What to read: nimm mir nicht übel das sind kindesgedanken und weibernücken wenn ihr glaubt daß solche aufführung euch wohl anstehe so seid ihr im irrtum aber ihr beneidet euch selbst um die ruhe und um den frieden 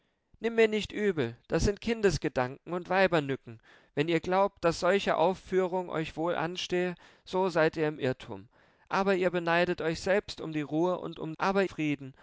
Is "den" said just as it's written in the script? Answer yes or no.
no